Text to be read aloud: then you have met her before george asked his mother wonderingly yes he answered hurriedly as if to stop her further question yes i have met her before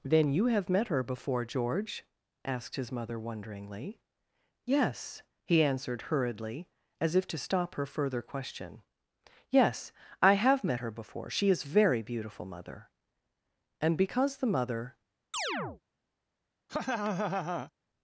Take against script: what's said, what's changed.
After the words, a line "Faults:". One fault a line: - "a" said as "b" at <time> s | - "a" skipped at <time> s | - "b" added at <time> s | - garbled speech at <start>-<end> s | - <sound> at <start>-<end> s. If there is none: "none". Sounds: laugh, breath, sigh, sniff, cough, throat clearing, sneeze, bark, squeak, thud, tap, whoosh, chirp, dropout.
then you have met her before george asked his mother wonderingly yes he answered hurriedly as if to stop her further question yes i have met her before she is very beautiful mother and because the mother
Faults:
- "she is very beautiful mother and because the mother" added at 11.3 s
- chirp at 15.3-15.8 s
- laugh at 16.7-17.7 s